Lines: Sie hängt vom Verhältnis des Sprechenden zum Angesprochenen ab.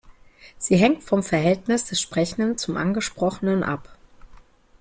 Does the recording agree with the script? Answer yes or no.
yes